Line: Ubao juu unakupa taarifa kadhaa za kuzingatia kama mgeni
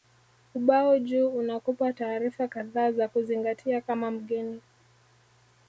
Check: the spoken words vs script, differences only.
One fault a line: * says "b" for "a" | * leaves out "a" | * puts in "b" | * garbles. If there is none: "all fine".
all fine